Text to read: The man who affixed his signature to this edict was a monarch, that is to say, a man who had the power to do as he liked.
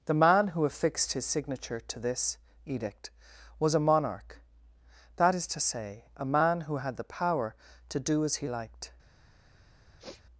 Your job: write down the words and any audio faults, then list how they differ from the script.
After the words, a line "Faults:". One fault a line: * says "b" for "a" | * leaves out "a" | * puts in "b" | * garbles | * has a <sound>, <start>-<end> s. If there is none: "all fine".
The man who affixed his signature to this edict was a monarch, that is to say, a man who had the power to do as he liked.
Faults:
* has a sniff, 10.0-10.2 s